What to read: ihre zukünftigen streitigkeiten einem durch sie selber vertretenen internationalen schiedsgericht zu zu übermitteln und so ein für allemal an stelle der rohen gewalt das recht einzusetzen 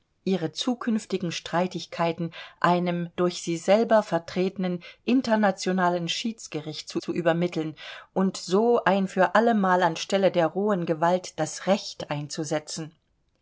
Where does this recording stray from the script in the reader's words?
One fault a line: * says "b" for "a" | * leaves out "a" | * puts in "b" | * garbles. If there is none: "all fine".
all fine